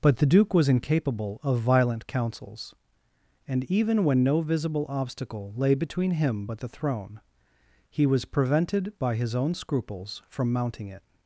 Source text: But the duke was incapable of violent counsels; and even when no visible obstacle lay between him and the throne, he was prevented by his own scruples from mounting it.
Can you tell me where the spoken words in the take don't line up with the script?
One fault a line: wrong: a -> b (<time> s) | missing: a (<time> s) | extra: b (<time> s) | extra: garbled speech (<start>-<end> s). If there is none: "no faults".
wrong: and -> but (6.4 s)